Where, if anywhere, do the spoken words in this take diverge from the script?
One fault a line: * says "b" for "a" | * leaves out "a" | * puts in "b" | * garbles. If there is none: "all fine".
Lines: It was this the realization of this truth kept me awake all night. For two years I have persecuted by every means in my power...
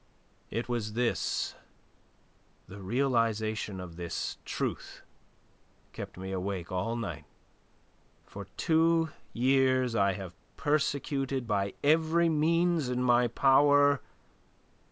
all fine